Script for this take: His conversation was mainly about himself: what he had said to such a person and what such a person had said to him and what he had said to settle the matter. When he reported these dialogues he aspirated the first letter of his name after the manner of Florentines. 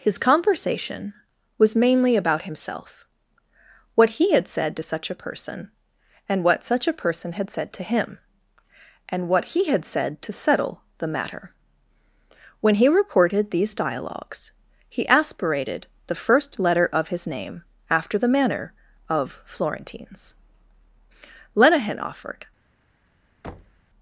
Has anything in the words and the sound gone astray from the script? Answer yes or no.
yes